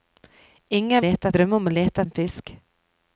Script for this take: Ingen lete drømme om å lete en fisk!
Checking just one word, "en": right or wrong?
right